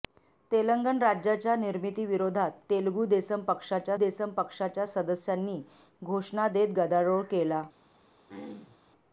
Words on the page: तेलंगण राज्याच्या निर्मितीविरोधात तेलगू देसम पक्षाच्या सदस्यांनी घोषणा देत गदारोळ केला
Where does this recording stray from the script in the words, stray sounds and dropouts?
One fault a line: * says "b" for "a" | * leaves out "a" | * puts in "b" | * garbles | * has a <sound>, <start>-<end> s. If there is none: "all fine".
* puts in "देसम पक्षाच्या"
* has a throat clearing, 8.3-8.8 s